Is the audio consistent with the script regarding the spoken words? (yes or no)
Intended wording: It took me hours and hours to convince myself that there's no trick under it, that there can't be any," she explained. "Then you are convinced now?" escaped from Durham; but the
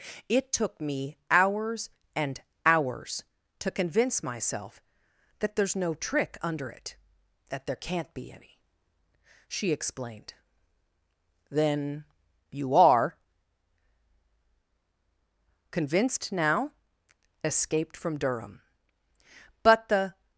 yes